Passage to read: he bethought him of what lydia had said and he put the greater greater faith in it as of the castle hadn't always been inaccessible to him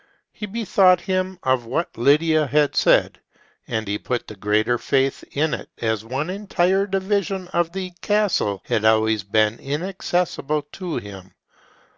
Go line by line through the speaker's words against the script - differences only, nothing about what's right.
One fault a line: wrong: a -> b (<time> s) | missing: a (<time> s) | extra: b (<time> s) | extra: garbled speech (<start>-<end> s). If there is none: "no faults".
missing: greater (4.8 s)
extra: one entire division (6.0 s)
wrong: hadn't -> had (8.7 s)